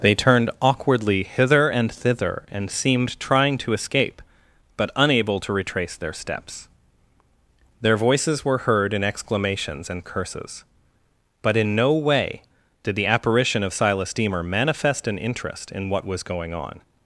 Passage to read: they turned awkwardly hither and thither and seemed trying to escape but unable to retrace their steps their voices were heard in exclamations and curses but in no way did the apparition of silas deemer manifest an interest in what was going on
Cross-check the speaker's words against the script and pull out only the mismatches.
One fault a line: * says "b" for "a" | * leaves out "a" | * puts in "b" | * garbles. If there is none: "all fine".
all fine